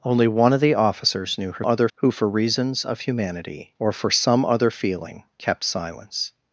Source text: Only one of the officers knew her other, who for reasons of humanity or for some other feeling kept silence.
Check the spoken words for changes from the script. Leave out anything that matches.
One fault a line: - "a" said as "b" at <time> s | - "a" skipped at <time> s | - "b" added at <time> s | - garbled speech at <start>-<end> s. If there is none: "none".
none